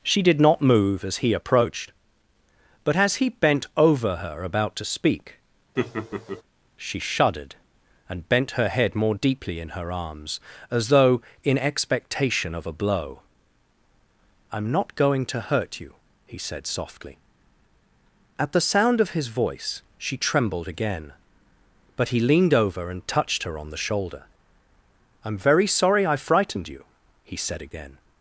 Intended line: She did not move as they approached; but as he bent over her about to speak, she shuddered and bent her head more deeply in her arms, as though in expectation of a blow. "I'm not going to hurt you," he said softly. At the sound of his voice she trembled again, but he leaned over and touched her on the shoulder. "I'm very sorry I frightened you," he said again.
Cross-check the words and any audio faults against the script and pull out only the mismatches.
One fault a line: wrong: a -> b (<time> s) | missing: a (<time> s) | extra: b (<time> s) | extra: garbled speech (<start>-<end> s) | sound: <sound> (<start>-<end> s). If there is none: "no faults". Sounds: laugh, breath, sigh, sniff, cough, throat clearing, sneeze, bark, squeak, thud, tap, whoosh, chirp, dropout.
wrong: they -> he (1.2 s)
sound: laugh (5.8-6.4 s)